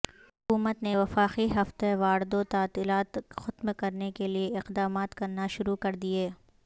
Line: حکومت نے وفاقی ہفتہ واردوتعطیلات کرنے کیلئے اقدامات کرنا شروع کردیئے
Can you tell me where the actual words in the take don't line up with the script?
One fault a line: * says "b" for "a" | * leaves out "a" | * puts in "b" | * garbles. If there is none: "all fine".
* puts in "ختم"